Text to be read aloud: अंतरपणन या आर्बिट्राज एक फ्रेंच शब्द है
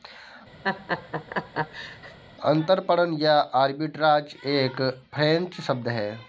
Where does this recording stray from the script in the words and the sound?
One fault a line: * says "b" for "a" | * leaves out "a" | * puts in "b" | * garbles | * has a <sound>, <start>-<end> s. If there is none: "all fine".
* has a laugh, 0.6-2.2 s